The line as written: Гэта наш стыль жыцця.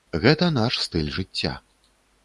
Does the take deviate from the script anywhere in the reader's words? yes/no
no